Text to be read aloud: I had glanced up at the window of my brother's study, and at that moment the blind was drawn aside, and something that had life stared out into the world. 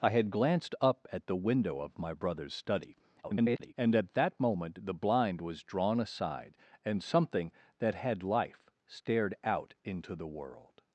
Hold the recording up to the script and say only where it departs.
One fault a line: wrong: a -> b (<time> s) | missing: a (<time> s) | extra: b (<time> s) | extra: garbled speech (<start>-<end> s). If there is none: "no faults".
extra: garbled speech (3.2-3.7 s)